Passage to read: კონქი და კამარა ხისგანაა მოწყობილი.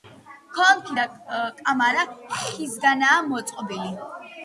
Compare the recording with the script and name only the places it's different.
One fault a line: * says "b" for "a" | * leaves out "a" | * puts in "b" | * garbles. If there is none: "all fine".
all fine